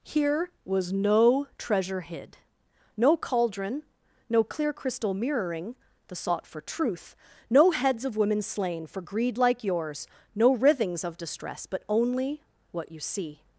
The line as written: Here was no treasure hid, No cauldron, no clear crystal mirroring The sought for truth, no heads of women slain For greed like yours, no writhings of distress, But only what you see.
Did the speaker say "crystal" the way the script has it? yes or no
yes